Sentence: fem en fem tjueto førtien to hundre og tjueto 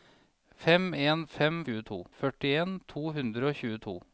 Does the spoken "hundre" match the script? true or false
true